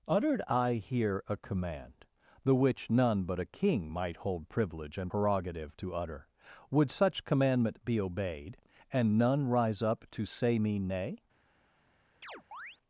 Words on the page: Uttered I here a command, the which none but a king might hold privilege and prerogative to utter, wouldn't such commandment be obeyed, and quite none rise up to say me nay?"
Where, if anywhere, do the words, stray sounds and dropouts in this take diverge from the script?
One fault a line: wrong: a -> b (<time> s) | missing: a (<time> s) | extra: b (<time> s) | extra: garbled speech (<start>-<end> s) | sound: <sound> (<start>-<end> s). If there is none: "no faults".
wrong: wouldn't -> would (6.7 s)
missing: quite (9.2 s)
sound: chirp (12.2-12.8 s)